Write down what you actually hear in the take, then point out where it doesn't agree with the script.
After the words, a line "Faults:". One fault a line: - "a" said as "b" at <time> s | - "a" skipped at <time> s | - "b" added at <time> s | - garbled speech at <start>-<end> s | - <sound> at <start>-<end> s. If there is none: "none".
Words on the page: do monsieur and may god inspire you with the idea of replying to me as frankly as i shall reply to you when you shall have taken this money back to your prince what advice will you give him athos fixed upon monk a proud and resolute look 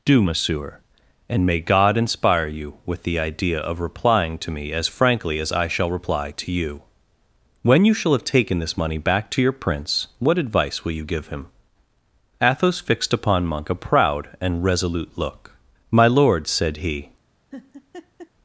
do monsieur and may god inspire you with the idea of replying to me as frankly as i shall reply to you when you shall have taken this money back to your prince what advice will you give him athos fixed upon monk a proud and resolute look my lord said he
Faults:
- "my lord said he" added at 15.9 s
- laugh at 17.5-18.3 s